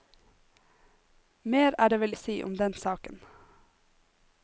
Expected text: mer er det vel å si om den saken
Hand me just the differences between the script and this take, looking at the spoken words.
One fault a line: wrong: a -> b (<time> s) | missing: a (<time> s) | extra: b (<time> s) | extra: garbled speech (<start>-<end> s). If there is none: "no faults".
no faults